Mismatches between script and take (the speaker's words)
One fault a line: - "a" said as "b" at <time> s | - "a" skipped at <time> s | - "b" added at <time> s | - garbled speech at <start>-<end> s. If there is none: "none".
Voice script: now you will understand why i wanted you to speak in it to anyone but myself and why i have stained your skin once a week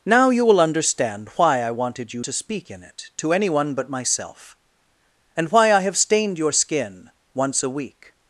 none